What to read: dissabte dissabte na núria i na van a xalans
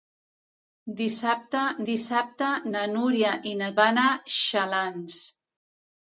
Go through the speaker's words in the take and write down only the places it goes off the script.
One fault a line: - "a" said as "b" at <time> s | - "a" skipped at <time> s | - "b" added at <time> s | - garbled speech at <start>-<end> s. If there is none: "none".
none